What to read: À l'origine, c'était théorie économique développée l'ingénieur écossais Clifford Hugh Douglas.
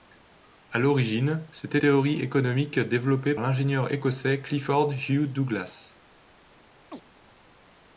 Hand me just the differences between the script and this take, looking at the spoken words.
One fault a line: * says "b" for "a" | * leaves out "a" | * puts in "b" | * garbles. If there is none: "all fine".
all fine